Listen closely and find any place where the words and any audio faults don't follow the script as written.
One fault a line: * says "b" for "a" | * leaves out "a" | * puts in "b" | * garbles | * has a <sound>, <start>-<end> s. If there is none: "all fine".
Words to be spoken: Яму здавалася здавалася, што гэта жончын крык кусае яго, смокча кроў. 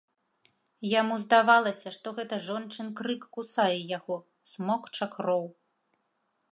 * leaves out "здавалася"